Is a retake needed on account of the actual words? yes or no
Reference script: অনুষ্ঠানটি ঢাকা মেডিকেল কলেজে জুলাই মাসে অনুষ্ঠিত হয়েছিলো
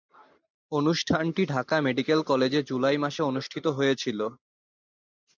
no